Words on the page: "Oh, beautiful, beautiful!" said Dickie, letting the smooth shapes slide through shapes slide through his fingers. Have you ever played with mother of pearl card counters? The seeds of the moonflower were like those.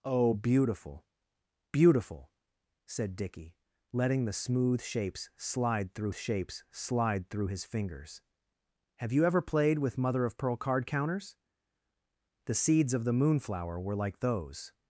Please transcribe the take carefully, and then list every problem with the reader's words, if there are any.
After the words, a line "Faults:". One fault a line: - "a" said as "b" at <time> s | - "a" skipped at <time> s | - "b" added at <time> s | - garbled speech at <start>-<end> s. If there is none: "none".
"Oh, beautiful, beautiful!" said Dickie, letting the smooth shapes slide through shapes slide through his fingers. Have you ever played with mother of pearl card counters? The seeds of the moonflower were like those.
Faults:
none